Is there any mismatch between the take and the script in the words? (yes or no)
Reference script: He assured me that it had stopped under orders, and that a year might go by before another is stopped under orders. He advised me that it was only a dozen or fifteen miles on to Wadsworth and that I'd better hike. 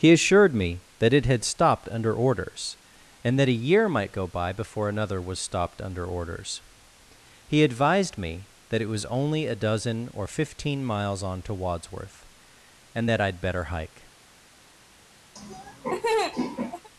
yes